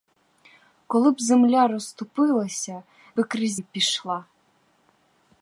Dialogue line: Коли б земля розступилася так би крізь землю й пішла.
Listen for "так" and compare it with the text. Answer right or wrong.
wrong